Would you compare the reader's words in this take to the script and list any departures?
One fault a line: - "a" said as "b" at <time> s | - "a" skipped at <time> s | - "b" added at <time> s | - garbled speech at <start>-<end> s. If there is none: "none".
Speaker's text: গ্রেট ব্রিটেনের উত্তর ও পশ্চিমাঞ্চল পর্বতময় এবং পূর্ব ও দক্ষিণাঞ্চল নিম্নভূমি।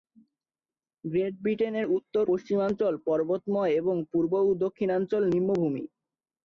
- "ও" skipped at 2.2 s